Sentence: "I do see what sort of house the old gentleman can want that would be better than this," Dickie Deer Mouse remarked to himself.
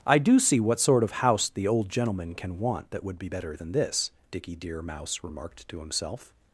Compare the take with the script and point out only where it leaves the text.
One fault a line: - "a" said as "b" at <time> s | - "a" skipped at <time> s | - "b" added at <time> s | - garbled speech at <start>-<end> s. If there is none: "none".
none